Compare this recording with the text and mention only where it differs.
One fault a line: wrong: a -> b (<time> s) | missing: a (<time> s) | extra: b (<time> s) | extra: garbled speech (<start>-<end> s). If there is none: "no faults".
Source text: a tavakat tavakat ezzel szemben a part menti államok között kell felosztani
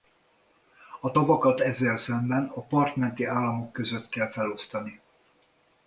missing: tavakat (1.6 s)